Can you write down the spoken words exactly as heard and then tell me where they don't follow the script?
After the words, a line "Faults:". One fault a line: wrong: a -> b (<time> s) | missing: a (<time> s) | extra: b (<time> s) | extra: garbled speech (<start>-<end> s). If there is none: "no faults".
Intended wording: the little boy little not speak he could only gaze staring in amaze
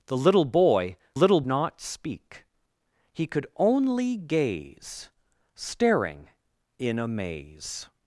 the little boy little not speak he could only gaze staring in amaze
Faults:
no faults